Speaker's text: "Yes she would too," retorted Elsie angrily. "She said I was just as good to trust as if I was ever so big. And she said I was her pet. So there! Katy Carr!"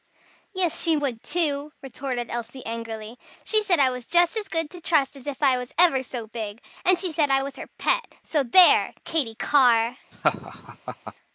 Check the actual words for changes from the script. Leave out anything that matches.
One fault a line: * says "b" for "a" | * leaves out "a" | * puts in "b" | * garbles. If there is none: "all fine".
all fine